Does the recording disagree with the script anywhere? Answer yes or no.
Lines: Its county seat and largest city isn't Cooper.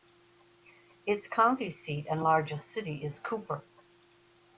yes